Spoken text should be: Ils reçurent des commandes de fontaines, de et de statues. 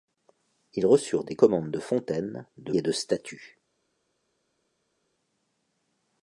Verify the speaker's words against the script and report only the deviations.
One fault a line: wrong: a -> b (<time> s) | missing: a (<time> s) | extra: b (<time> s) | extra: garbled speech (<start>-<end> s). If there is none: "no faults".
no faults